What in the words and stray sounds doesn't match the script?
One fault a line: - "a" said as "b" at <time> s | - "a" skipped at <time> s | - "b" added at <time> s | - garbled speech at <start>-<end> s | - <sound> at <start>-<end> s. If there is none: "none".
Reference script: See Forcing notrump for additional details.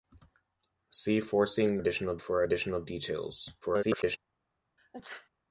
- "notrump" said as "additional" at 1.8 s
- garbled speech at 3.6-4.2 s
- sneeze at 4.8-5.3 s